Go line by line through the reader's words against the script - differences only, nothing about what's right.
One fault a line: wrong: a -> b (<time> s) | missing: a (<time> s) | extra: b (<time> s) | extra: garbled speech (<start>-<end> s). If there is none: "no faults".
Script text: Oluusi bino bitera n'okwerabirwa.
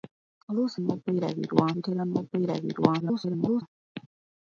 wrong: bino -> n'okwerabirwa (0.8 s)
extra: garbled speech (3.0-3.6 s)